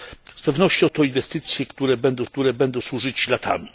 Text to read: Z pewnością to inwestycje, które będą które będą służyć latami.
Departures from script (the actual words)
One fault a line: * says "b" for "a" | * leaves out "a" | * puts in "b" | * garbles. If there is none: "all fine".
all fine